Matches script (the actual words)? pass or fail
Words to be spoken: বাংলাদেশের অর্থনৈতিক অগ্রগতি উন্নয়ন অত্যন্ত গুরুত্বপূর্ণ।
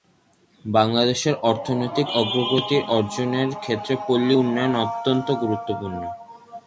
fail